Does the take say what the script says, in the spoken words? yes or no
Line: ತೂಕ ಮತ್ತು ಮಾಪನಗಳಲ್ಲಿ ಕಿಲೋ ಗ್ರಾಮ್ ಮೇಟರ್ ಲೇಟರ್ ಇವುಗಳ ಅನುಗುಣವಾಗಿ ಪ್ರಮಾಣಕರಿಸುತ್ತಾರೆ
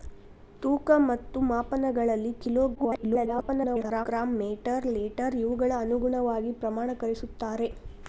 no